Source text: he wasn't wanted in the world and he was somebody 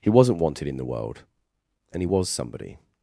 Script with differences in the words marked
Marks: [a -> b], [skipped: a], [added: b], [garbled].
he wasn't wanted in the world and he was somebody